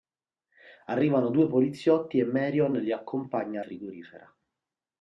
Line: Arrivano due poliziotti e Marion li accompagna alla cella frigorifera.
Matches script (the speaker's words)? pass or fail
fail